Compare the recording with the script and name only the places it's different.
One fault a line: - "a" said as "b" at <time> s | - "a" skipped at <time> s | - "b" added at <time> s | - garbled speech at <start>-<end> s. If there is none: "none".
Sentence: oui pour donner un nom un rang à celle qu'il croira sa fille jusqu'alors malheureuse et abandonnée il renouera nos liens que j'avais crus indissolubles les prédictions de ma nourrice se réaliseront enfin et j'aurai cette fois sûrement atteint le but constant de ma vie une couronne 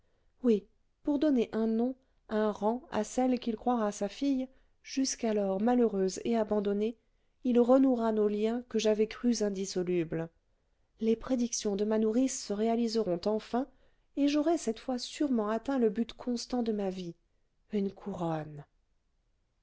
none